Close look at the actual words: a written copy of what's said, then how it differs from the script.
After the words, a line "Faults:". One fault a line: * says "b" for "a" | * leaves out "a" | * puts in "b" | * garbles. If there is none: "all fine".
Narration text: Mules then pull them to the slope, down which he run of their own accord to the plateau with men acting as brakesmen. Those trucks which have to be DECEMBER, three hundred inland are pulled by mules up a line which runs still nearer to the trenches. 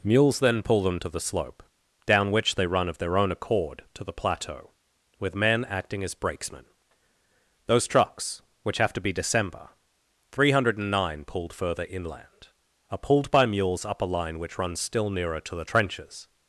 Mules then pull them to the slope, down which they run of their own accord to the plateau with men acting as brakesmen. Those trucks which have to be DECEMBER, three hundred nine pulled further inland are pulled by mules up a line which runs still nearer to the trenches.
Faults:
* says "they" for "he"
* puts in "nine pulled further"